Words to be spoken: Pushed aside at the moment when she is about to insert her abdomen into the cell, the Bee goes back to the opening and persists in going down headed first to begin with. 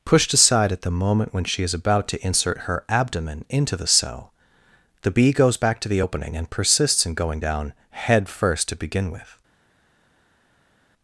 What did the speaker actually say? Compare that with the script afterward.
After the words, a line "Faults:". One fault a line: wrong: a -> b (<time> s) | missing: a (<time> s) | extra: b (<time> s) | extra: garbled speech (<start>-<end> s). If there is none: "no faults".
Pushed aside at the moment when she is about to insert her abdomen into the cell, the Bee goes back to the opening and persists in going down head first to begin with.
Faults:
wrong: headed -> head (7.9 s)